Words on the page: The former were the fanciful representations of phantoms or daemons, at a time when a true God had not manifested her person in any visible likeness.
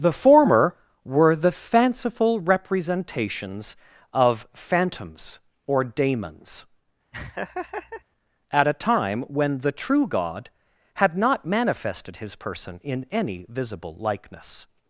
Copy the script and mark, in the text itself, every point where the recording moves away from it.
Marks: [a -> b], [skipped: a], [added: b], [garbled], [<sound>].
The former were the fanciful representations of phantoms or daemons, [laugh] at a time when [a -> the] true God had not manifested [her -> his] person in any visible likeness.